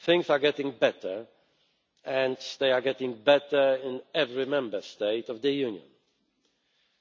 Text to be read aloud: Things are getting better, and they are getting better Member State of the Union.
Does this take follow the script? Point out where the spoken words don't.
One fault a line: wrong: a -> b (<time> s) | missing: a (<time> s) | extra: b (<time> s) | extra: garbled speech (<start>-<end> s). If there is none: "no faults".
extra: in every (3.8 s)